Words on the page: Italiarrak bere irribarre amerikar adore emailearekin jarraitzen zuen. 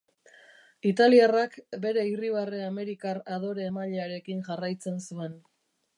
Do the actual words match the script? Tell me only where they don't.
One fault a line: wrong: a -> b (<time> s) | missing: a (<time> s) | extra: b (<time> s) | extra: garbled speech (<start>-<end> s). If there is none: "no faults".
no faults